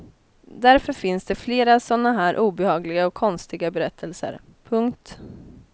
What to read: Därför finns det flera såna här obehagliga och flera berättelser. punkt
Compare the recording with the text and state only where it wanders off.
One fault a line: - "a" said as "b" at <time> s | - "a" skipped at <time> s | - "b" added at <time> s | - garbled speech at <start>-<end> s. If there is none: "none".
- "flera" said as "konstiga" at 3.1 s